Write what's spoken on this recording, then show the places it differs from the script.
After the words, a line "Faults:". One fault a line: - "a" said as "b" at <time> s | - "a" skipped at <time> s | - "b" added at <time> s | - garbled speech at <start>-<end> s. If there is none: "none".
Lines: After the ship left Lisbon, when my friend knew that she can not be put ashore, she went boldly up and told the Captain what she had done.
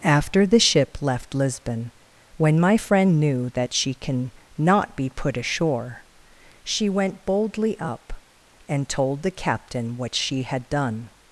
After the ship left Lisbon, when my friend knew that she can not be put ashore, she went boldly up and told the Captain what she had done.
Faults:
none